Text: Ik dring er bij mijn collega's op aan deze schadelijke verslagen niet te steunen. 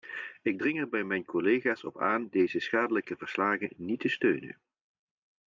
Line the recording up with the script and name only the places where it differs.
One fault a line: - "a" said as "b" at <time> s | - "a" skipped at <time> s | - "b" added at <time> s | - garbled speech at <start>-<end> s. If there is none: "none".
none